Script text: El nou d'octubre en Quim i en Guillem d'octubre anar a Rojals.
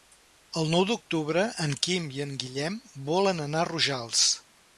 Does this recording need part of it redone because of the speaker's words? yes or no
yes